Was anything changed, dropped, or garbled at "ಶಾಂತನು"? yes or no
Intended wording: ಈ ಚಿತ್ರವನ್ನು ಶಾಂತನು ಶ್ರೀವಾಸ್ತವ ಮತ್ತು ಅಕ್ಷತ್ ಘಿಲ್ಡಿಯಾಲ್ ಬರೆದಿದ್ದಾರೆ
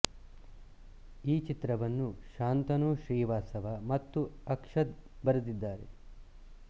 no